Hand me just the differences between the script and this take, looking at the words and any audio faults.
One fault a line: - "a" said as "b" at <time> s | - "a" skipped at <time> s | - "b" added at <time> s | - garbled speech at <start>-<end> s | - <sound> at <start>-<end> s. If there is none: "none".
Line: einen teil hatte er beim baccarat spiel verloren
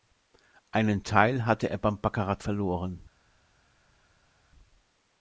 - "spiel" skipped at 2.4 s